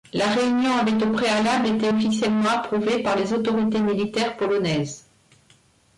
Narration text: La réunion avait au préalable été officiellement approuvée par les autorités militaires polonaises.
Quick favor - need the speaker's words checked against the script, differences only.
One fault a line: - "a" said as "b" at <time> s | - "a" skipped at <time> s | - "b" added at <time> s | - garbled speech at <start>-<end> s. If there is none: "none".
none